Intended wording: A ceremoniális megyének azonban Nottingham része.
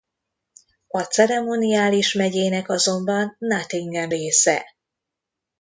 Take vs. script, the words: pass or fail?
pass